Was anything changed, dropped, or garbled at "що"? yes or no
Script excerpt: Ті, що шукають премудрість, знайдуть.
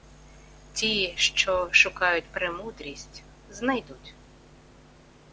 no